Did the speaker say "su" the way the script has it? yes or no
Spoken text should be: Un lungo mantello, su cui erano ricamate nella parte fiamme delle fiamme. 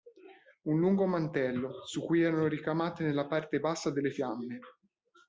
yes